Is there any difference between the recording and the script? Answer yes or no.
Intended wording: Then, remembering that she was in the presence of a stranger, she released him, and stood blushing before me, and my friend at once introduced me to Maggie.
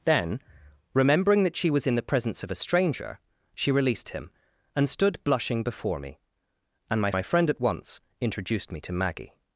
yes